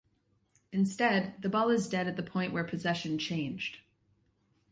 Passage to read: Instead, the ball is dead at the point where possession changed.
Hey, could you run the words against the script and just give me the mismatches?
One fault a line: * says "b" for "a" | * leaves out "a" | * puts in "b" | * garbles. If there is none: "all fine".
all fine